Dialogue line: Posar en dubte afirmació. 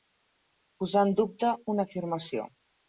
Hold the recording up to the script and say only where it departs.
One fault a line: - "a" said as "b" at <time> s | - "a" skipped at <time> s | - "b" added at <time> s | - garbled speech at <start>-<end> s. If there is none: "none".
- "una" added at 1.7 s